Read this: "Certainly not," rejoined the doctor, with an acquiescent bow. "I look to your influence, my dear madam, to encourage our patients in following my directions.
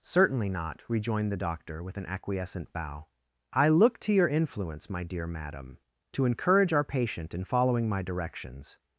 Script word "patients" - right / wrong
wrong